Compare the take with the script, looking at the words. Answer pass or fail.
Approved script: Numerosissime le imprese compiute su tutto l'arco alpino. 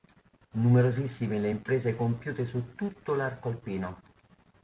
pass